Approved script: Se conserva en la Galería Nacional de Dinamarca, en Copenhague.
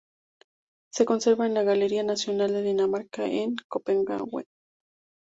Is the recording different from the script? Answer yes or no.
no